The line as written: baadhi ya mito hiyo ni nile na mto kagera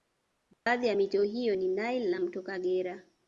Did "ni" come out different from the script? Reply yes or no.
no